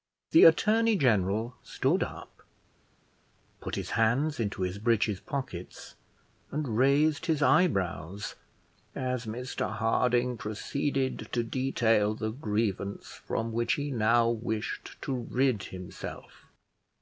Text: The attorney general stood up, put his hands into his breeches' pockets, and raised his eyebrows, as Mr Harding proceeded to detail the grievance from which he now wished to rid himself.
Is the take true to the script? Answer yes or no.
yes